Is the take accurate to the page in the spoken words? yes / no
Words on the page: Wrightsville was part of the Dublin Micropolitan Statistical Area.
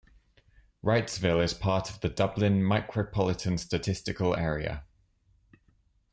no